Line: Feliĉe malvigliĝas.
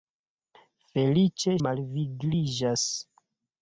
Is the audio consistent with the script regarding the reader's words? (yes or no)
yes